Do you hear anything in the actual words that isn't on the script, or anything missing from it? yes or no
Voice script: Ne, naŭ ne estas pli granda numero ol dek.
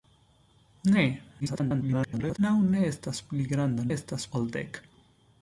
yes